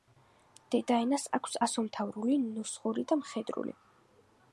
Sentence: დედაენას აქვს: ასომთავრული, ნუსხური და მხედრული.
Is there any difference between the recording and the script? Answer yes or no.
no